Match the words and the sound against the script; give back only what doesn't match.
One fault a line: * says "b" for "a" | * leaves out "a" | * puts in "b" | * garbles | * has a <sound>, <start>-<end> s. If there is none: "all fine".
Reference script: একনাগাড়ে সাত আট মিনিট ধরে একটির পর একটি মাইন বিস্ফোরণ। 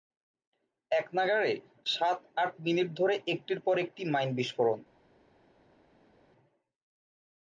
all fine